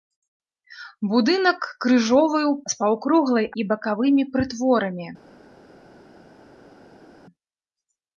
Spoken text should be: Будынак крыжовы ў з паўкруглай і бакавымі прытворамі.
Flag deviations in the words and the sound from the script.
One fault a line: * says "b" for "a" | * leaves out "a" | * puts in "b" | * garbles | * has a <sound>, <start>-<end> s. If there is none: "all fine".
all fine